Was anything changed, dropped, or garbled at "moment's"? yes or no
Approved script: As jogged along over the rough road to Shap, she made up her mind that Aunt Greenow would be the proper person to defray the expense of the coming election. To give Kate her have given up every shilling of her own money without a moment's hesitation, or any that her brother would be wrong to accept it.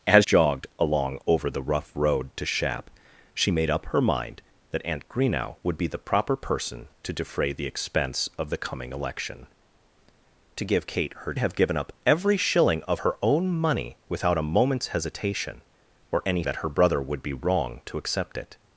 no